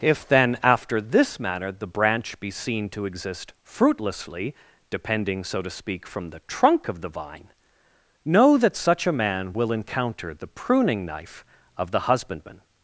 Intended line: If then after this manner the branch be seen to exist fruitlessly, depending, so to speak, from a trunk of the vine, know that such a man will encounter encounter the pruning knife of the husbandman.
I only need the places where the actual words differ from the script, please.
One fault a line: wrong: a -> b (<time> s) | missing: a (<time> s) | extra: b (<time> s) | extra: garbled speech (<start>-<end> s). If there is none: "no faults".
wrong: a -> the (6.3 s)
missing: encounter (10.3 s)